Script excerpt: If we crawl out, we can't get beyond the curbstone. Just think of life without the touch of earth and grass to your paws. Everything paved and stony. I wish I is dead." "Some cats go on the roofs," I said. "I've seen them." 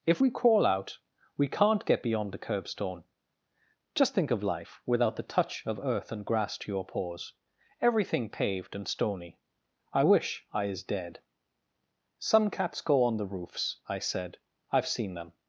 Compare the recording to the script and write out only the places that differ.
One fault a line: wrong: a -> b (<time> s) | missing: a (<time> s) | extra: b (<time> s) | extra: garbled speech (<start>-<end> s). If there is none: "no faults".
no faults